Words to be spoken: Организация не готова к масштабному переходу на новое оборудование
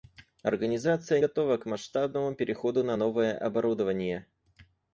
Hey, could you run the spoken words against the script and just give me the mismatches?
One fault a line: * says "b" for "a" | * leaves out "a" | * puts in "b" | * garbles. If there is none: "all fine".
* leaves out "не"